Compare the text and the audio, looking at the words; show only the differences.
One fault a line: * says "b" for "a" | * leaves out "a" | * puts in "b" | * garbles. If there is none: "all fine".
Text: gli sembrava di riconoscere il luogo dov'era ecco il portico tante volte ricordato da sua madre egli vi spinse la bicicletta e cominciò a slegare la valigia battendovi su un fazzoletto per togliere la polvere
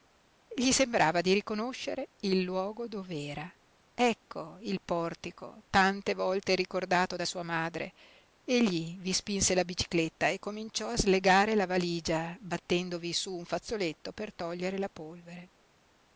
all fine